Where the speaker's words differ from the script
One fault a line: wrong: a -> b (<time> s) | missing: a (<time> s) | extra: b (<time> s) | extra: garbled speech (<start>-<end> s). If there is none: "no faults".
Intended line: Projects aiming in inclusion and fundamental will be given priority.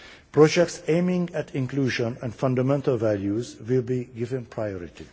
wrong: in -> at (1.3 s)
extra: values (2.9 s)